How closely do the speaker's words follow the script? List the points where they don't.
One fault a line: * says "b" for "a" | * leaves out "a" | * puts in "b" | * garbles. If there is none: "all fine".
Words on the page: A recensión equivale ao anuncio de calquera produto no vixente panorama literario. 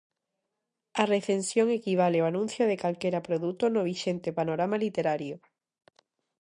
all fine